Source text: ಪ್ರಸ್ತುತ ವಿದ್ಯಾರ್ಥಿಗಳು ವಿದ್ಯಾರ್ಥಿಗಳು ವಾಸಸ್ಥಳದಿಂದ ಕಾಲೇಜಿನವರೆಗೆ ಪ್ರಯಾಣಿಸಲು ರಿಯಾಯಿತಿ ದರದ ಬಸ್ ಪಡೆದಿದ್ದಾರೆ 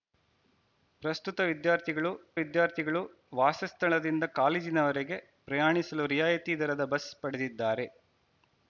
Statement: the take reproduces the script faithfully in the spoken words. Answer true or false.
true